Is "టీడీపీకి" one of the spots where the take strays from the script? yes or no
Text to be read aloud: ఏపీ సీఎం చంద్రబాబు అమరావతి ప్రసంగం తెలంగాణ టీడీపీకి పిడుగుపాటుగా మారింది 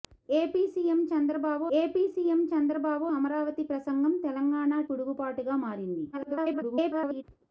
yes